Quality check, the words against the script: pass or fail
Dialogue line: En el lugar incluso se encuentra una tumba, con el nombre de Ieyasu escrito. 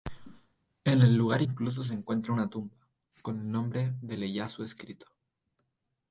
pass